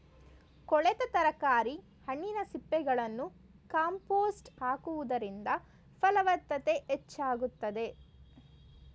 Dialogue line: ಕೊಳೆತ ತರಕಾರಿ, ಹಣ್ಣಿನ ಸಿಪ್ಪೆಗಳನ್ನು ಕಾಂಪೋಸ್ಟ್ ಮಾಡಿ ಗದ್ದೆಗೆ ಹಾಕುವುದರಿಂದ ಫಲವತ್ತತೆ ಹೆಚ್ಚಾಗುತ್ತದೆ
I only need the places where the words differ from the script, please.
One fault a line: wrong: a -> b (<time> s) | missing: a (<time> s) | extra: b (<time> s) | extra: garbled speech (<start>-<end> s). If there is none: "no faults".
missing: ಮಾಡಿ ಗದ್ದೆಗೆ (4.5 s)